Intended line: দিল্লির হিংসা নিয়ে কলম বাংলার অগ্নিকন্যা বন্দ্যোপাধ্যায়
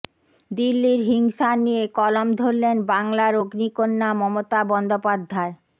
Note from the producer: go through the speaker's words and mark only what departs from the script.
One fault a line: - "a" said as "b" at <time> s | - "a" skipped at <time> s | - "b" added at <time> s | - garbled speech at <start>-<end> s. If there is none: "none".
- "ধরলেন" added at 2.4 s
- "মমতা" added at 4.2 s